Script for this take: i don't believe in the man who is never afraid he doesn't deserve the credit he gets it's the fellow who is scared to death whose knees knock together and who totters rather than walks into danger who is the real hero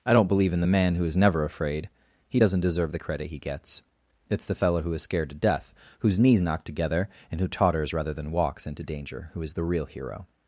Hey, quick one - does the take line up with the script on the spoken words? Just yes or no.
yes